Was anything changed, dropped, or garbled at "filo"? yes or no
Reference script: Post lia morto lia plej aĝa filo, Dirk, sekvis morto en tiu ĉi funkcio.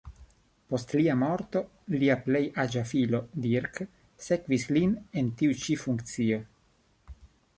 no